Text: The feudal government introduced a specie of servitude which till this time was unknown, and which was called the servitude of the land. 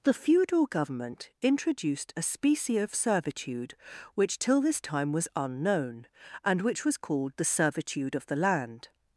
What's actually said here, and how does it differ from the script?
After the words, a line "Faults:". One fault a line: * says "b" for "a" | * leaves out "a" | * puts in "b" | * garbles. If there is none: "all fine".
The feudal government introduced a specie of servitude which till this time was unknown, and which was called the servitude of the land.
Faults:
all fine